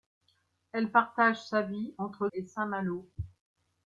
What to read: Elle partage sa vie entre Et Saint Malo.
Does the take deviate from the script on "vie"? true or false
false